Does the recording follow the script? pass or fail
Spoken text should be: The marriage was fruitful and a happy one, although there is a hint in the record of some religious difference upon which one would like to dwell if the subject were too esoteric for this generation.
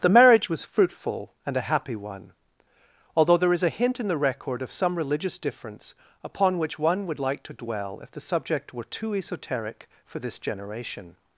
pass